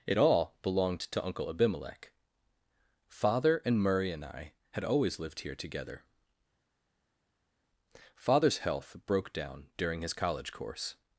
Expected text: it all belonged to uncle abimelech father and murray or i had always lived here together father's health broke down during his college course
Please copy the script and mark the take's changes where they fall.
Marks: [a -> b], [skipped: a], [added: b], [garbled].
it all belonged to uncle abimelech father and murray [or -> and] i had always lived here together father's health broke down during his college course